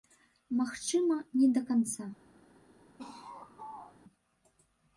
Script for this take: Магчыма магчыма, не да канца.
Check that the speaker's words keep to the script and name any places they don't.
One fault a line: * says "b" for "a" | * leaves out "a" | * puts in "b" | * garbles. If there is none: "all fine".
* leaves out "магчыма"